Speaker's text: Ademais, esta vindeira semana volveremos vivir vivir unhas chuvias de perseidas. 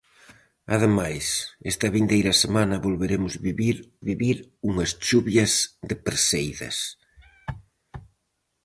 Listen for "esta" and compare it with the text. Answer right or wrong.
right